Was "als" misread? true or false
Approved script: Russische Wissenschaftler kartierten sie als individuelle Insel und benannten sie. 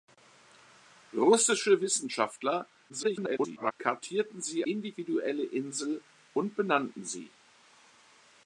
true